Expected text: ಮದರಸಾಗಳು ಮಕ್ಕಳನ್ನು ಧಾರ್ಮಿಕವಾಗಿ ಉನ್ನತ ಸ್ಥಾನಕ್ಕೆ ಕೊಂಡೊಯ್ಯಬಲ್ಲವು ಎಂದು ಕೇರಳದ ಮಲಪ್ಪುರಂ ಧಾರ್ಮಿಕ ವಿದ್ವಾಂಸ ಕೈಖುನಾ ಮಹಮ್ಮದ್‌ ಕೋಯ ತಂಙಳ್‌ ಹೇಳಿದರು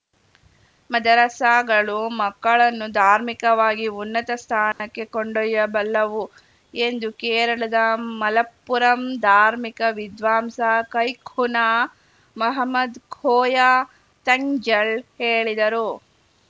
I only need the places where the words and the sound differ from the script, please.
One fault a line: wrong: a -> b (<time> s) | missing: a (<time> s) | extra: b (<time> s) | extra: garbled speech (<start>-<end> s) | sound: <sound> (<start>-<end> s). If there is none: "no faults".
sound: dropout (4.7-4.8 s)